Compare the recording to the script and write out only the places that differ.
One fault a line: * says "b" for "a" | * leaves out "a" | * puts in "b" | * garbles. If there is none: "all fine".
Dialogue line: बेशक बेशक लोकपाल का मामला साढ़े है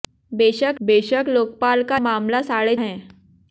all fine